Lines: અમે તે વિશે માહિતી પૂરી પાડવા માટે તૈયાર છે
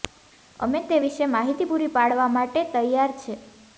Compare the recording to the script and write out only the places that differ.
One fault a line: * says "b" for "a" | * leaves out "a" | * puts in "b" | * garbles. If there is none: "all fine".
all fine